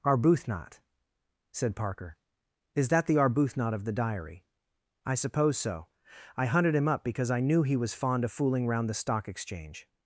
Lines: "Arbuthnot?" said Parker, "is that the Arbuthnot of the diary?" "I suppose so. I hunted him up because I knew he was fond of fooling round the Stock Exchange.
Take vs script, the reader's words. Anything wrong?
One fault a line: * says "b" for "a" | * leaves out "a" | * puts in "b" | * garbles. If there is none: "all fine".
all fine